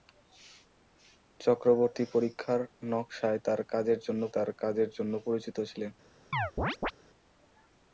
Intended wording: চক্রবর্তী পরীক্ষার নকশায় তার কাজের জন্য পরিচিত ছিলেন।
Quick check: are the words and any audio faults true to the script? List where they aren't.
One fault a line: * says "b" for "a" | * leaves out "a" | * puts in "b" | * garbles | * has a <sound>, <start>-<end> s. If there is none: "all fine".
* puts in "তার কাজের জন্য"
* has a chirp, 6.3-6.9 s